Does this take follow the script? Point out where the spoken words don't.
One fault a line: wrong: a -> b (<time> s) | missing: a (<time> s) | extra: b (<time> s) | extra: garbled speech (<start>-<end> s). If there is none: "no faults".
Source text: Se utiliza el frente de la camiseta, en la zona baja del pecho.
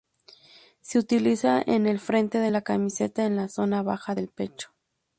extra: en (1.6 s)